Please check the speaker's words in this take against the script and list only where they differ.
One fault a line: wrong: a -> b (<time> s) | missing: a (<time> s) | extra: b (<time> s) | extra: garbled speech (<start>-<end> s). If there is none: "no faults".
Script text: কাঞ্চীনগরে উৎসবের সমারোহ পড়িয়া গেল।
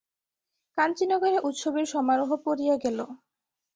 no faults